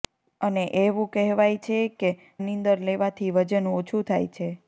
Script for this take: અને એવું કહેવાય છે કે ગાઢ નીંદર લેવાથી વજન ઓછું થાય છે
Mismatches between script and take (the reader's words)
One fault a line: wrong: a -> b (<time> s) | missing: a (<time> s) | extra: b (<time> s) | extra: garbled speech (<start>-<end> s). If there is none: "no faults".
missing: ગાઢ (2.1 s)